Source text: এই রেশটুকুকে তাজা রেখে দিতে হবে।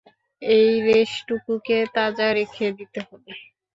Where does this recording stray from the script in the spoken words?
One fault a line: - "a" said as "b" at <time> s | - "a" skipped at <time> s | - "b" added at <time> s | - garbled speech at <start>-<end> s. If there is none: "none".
none